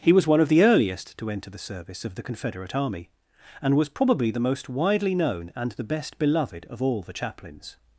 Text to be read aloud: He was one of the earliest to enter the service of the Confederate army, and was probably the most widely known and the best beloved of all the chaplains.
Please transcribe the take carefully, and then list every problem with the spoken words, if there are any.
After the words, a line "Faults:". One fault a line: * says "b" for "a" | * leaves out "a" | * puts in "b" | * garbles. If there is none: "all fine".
He was one of the earliest to enter the service of the Confederate army, and was probably the most widely known and the best beloved of all the chaplains.
Faults:
all fine